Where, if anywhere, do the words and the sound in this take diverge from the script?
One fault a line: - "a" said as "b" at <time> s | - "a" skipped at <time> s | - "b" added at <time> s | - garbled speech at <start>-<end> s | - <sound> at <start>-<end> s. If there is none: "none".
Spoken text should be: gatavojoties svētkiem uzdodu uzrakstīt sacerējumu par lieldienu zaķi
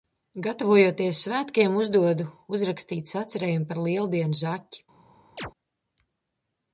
- chirp at 5.4-5.5 s